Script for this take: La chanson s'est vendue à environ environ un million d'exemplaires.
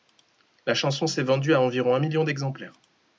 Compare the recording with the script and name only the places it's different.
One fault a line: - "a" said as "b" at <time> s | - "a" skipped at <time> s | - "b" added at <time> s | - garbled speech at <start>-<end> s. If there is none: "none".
- "environ" skipped at 1.9 s